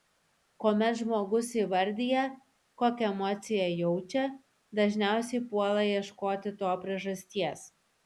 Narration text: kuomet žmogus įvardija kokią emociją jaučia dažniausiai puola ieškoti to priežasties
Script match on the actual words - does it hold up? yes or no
yes